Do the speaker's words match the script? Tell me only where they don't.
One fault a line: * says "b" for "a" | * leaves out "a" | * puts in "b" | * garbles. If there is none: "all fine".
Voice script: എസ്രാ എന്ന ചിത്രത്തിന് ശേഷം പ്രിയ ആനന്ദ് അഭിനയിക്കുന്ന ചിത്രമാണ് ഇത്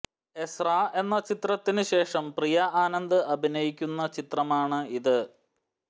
all fine